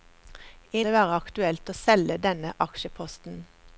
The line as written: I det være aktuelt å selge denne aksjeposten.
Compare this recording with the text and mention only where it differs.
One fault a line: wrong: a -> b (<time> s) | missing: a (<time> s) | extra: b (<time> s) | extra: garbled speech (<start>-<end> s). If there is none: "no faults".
no faults